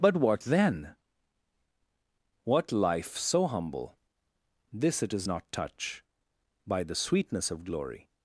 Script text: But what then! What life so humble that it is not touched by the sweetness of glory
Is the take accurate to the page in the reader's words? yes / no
no